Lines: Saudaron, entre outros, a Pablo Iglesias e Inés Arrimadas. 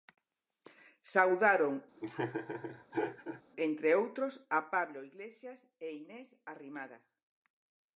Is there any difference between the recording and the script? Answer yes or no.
no